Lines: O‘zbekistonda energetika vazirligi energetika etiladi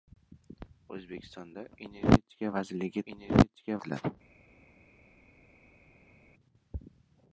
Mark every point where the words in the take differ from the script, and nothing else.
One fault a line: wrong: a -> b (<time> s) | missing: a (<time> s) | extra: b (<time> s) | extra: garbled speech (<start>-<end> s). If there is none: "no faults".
no faults